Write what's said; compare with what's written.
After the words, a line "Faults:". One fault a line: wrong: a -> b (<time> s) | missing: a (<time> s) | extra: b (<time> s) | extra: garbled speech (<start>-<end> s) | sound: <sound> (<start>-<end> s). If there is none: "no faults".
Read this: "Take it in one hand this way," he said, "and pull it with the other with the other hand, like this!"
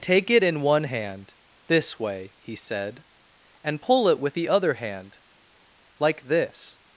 "Take it in one hand this way," he said, "and pull it with the other hand, like this!"
Faults:
missing: with the other (4.7 s)